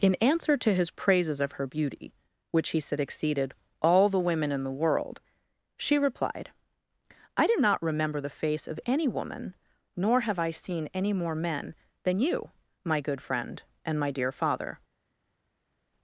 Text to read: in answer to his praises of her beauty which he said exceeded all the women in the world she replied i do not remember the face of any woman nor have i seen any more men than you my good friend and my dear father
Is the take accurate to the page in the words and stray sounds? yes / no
yes